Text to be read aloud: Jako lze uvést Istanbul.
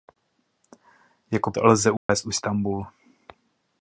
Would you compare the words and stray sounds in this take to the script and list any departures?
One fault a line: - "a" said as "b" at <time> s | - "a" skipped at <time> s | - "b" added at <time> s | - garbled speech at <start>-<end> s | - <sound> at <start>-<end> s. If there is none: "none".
- dropout at 2.0-2.1 s